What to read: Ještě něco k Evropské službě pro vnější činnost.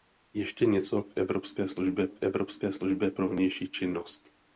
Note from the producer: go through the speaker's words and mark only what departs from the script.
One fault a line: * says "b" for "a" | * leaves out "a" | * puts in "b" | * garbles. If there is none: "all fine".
* puts in "k Evropské službě"